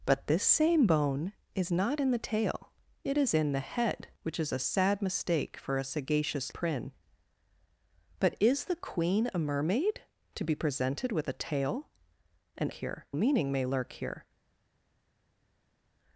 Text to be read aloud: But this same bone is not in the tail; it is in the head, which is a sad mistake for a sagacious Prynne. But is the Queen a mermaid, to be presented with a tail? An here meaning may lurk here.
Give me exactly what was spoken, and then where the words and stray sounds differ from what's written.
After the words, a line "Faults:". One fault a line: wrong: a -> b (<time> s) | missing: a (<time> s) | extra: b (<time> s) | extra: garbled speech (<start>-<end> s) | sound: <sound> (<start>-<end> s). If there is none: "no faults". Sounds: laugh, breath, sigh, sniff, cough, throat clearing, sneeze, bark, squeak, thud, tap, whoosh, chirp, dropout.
But this same bone is not in the tail; it is in the head, which is a sad mistake for a sagacious Prynne. But is the Queen a mermaid, to be presented with a tail? An here meaning may lurk here.
Faults:
no faults